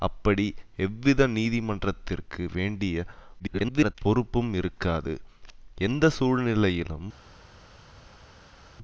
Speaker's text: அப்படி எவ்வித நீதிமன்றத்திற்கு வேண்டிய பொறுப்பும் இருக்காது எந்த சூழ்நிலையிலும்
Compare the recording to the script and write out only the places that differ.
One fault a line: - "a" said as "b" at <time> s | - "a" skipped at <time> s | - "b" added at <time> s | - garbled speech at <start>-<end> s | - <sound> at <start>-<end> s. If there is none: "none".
- garbled speech at 3.4-4.0 s